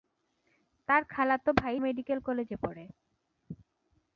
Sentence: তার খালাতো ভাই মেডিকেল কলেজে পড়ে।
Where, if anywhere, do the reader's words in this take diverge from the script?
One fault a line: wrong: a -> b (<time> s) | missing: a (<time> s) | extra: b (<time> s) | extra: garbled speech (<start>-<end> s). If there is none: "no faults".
no faults